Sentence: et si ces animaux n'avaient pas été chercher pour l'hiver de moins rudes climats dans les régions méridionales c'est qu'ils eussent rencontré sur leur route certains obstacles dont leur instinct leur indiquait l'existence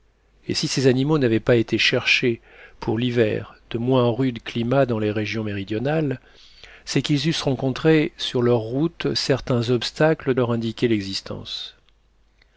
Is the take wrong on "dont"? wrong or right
wrong